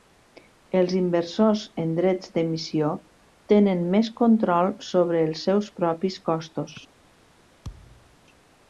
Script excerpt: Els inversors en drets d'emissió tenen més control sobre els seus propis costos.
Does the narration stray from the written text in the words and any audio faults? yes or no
yes